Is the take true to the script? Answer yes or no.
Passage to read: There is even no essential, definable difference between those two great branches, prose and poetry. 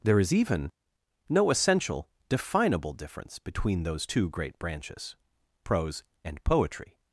yes